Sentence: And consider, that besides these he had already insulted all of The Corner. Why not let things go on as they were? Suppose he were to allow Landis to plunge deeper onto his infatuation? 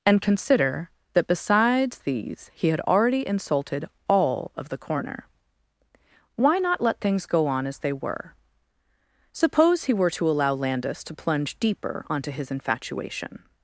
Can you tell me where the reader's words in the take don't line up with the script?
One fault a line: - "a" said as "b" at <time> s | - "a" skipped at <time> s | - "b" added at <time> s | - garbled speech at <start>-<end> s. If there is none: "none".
none